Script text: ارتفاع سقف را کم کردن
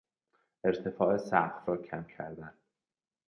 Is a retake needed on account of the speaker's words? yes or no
no